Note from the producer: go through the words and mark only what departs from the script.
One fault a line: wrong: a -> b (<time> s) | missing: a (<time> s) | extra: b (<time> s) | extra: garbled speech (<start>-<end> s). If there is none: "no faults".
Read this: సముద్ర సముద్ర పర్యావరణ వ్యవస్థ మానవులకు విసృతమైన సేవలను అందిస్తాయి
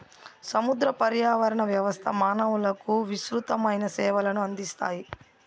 missing: సముద్ర (0.9 s)